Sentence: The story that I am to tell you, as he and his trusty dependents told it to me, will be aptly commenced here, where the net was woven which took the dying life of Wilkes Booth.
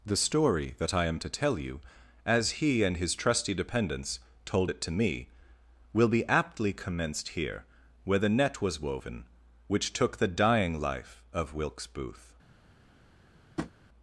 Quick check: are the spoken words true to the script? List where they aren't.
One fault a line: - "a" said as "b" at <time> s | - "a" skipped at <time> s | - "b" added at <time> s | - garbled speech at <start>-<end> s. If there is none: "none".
none